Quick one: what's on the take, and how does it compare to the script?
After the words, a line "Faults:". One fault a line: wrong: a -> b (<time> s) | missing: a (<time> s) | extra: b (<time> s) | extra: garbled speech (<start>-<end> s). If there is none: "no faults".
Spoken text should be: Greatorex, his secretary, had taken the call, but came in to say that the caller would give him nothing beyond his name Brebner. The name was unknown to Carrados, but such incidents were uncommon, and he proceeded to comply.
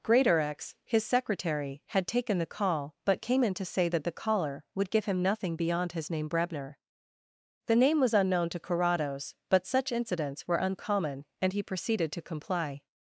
Greatorex, his secretary, had taken the call, but came in to say that the caller would give him nothing beyond his name Brebner. The name was unknown to Carrados, but such incidents were uncommon, and he proceeded to comply.
Faults:
no faults